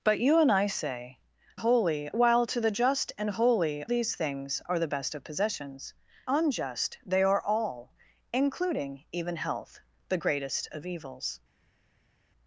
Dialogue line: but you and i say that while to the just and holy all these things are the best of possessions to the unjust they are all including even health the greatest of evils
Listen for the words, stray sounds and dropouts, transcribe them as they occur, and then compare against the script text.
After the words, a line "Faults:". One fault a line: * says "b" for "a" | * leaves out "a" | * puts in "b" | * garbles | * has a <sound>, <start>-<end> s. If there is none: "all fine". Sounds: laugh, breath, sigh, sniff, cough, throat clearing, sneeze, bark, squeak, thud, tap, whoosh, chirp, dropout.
but you and i say holy while to the just and holy these things are the best of possessions unjust they are all including even health the greatest of evils
Faults:
* says "holy" for "that"
* leaves out "all"
* leaves out "to the"